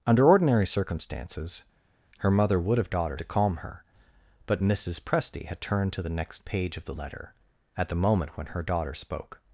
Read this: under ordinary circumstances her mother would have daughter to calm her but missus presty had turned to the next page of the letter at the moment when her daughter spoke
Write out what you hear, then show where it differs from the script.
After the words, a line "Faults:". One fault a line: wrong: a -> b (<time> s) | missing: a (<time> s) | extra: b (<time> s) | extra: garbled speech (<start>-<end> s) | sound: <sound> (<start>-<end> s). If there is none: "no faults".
under ordinary circumstances her mother would have daughter to calm her but missus presty had turned to the next page of the letter at the moment when her daughter spoke
Faults:
no faults